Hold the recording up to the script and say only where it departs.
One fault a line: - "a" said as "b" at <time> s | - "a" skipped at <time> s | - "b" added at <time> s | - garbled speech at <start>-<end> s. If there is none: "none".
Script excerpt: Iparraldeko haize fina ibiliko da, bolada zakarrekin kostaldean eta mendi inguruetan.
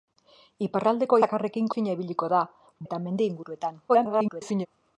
- "haize" said as "zakarrekin" at 1.2 s
- "bolada zakarrekin kostaldean" skipped at 2.4 s
- garbled speech at 3.9-4.7 s